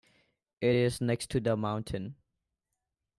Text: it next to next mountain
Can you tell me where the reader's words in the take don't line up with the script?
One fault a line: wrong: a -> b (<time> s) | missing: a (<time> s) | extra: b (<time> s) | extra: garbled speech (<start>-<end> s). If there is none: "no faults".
extra: is (0.7 s)
wrong: next -> the (1.4 s)